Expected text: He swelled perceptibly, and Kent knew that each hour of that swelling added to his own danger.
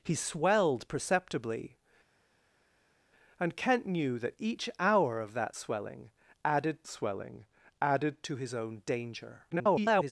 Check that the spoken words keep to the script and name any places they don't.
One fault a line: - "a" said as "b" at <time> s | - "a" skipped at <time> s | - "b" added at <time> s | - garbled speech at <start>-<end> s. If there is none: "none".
- "swelling added" added at 6.9 s
- garbled speech at 9.5-10.1 s